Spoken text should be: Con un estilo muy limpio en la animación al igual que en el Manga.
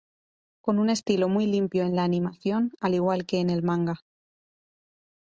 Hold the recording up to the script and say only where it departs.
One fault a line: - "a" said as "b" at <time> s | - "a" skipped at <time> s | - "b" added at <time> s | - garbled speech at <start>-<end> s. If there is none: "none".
none